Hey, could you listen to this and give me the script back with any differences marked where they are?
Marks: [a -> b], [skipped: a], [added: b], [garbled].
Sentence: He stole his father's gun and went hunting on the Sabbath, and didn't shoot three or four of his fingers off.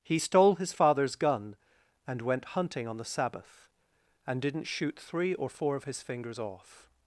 He stole his father's gun and went hunting on the Sabbath, and didn't shoot three or four of his fingers off.